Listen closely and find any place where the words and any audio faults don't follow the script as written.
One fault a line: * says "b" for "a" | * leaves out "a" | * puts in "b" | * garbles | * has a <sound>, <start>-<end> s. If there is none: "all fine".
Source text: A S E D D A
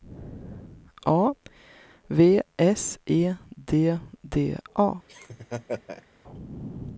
* puts in "V"
* has a laugh, 5.1-6.1 s